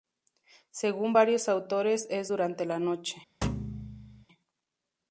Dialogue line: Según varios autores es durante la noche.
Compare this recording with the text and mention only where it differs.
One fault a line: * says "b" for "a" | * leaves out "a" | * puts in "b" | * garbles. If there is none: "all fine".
all fine